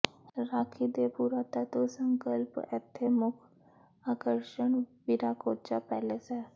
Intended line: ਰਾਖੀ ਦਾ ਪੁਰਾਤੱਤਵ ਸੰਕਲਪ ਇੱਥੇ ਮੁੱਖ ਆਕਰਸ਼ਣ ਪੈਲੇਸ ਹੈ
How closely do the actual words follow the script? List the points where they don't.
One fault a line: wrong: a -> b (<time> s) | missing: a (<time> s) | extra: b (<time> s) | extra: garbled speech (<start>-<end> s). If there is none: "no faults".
wrong: ਦਾ -> ਦੇ (0.9 s)
extra: ਵਿਰਾਕੋਚਾ (5.1 s)